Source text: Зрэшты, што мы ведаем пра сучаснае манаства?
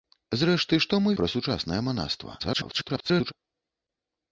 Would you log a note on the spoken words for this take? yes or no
yes